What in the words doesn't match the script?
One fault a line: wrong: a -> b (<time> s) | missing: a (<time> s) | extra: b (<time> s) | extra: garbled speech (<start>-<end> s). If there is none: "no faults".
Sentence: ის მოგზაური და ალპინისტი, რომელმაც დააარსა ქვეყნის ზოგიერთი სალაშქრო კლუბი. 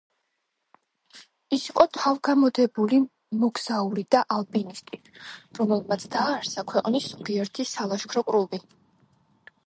extra: იყო თავგამოდებული (1.7 s)